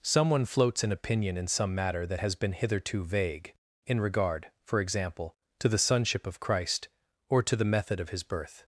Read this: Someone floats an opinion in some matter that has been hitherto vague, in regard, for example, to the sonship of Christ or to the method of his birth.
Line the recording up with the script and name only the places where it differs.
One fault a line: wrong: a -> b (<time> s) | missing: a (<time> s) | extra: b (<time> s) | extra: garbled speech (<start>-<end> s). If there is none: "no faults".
no faults